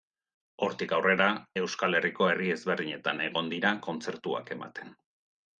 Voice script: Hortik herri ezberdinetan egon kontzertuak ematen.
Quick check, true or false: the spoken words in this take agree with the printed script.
false